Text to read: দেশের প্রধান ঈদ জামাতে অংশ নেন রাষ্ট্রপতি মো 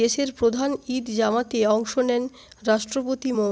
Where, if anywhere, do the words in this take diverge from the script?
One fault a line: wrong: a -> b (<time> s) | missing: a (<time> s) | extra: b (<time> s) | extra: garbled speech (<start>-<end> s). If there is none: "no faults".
no faults